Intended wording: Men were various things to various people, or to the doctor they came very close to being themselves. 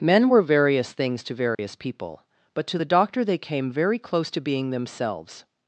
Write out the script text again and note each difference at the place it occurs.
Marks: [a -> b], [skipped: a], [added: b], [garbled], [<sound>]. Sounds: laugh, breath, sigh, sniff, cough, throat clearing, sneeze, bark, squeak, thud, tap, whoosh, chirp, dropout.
Men were various things to various [dropout] people, [or -> but] to the doctor they came very close to being themselves.